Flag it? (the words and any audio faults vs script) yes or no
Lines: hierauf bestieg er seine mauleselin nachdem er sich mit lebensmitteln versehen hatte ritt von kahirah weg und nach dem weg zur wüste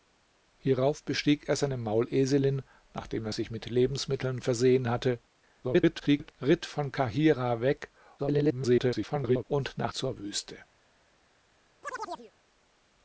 yes